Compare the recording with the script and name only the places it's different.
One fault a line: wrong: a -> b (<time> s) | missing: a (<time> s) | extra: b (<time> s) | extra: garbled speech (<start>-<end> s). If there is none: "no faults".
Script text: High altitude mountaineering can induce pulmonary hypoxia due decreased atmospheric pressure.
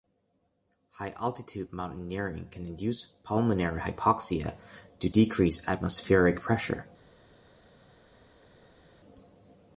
no faults